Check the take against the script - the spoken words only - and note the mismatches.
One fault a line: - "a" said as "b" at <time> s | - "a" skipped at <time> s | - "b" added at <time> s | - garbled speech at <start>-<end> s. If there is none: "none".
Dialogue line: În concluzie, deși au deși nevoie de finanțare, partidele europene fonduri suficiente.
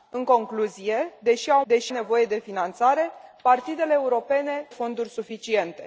none